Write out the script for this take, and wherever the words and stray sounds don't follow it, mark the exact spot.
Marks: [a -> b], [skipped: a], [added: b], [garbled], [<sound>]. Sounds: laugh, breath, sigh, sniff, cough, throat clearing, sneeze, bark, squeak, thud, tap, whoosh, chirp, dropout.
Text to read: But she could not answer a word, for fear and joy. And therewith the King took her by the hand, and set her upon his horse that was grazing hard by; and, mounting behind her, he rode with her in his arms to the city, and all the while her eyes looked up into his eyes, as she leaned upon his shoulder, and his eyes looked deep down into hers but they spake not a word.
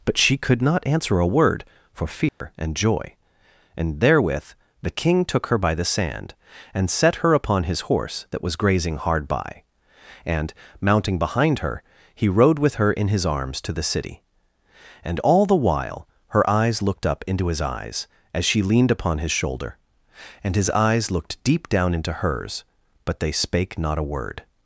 But she could not answer a word, for fear [dropout] and joy. And therewith the King took her by the [hand, -> sand] and set her upon his horse that was grazing hard by; and, mounting behind her, he rode with her in his arms to the city, and all the while her eyes looked up into his eyes, as she leaned upon his shoulder, and his eyes looked deep down into hers but they spake not a word.